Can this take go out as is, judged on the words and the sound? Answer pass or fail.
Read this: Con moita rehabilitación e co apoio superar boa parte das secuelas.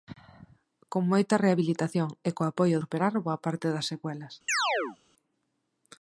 fail